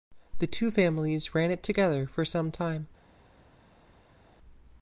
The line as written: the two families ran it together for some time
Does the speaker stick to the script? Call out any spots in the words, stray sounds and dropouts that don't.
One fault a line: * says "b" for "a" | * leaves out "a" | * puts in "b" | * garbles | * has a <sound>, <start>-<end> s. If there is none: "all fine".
all fine